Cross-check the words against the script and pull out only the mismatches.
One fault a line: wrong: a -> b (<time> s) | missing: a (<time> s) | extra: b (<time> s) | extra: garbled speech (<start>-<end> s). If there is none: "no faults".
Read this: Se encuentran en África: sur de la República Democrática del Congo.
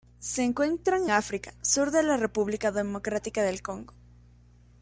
missing: en (1.1 s)